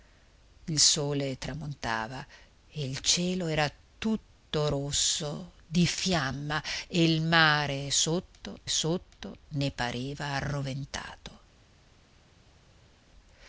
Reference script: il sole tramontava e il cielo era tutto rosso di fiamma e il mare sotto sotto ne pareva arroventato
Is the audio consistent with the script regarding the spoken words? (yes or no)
yes